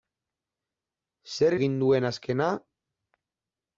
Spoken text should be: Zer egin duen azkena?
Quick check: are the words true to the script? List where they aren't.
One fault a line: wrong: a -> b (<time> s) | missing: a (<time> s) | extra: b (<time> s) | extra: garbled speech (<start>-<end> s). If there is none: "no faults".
no faults